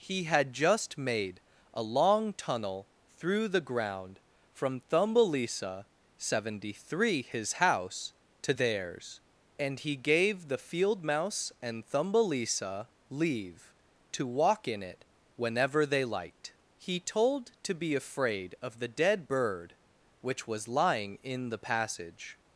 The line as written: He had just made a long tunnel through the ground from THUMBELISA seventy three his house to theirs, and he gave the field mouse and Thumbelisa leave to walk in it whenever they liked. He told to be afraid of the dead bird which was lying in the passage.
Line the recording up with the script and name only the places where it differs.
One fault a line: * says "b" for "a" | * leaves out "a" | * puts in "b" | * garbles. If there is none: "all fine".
all fine